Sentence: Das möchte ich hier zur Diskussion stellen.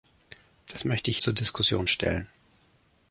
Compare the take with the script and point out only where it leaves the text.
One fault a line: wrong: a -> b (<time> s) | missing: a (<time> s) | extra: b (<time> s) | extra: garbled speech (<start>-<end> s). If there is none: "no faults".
missing: hier (1.2 s)